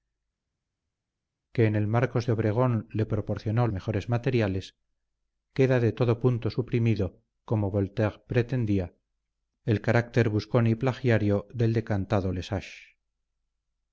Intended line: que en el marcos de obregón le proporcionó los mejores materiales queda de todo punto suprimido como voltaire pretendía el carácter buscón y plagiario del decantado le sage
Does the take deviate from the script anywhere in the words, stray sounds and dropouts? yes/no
yes